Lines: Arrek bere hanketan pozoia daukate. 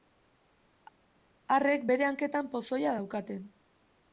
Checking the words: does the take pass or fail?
pass